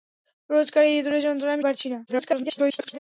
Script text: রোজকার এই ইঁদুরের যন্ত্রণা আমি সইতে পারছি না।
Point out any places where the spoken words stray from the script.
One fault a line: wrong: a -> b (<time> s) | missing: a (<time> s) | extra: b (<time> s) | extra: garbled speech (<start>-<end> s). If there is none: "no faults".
missing: সইতে (1.6 s)
extra: garbled speech (2.1-3.0 s)